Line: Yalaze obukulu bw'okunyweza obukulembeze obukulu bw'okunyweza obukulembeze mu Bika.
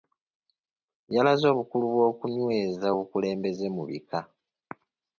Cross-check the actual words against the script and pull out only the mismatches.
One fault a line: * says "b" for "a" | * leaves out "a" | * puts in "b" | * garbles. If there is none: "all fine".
* leaves out "obukulu bw'okunyweza obukulembeze"